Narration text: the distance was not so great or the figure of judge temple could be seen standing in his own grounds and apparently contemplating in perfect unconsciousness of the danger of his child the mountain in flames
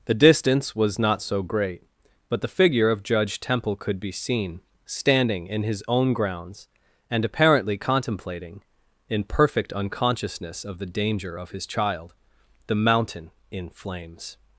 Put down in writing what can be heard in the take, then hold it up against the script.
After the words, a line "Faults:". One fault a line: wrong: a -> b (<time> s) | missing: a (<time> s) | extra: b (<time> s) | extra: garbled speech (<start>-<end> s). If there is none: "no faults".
the distance was not so great but the figure of judge temple could be seen standing in his own grounds and apparently contemplating in perfect unconsciousness of the danger of his child the mountain in flames
Faults:
wrong: or -> but (2.3 s)